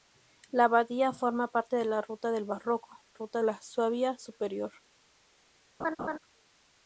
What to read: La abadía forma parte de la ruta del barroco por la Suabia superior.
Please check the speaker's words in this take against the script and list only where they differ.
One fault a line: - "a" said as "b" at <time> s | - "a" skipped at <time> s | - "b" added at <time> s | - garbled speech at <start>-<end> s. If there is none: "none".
- "por" said as "ruta" at 3.1 s